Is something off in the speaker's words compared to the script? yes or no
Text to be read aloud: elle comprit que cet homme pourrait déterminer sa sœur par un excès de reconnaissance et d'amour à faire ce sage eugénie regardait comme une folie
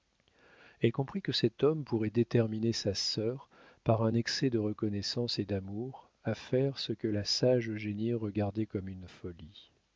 yes